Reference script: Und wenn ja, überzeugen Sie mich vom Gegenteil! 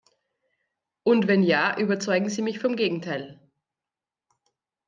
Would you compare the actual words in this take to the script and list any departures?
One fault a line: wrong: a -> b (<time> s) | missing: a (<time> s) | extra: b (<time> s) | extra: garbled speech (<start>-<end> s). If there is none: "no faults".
no faults